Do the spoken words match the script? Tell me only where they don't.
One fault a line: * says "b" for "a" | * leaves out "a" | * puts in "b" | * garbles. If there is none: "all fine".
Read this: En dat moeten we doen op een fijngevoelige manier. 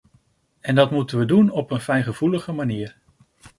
all fine